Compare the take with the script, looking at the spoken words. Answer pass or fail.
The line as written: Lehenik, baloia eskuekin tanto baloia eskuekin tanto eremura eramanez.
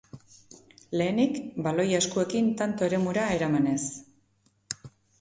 fail